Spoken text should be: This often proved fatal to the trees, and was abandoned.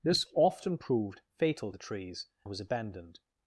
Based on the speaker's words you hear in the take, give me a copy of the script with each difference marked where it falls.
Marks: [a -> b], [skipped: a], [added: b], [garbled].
This often proved fatal [skipped: to] the trees, [skipped: and] was abandoned.